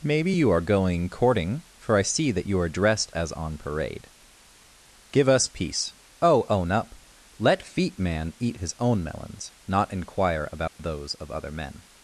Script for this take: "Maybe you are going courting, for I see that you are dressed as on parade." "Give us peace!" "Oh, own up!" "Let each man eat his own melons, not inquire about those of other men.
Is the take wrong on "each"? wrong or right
wrong